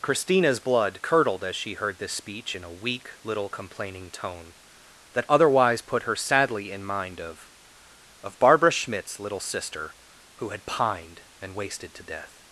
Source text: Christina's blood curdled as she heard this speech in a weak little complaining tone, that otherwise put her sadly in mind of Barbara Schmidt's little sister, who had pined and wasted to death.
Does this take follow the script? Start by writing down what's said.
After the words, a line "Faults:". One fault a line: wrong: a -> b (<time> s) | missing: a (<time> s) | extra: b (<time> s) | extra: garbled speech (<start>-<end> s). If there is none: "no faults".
Christina's blood curdled as she heard this speech in a weak little complaining tone, that otherwise put her sadly in mind of of Barbara Schmidt's little sister, who had pined and wasted to death.
Faults:
extra: of (8.2 s)